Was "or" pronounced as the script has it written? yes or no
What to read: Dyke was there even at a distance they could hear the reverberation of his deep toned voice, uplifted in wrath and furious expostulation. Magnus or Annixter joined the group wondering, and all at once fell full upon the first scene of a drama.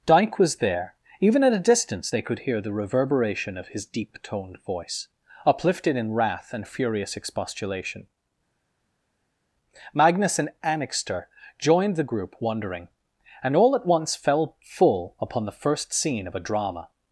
no